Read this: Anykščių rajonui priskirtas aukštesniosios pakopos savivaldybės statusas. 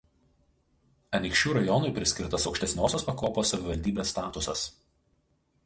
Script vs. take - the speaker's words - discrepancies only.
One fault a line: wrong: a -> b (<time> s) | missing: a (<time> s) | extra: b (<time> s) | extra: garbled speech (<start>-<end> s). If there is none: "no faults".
no faults